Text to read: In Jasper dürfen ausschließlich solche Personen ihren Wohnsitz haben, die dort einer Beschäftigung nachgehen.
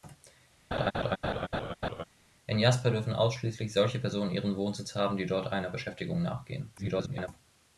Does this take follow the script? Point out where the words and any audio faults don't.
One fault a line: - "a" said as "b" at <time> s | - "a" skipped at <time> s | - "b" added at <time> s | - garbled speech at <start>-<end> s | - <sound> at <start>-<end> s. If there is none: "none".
- laugh at 0.7-2.0 s
- garbled speech at 6.8-7.3 s